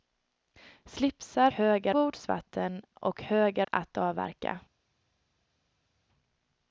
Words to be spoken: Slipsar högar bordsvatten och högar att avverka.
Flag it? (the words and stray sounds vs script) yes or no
no